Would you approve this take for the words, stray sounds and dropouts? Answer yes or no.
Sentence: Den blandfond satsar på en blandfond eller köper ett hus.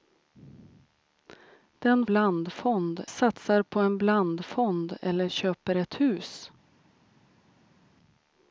yes